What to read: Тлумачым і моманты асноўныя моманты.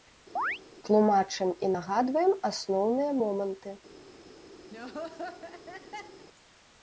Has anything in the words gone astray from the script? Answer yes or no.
yes